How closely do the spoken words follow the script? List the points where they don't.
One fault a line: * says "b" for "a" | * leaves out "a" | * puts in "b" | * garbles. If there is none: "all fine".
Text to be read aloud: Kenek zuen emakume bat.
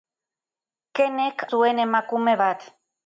all fine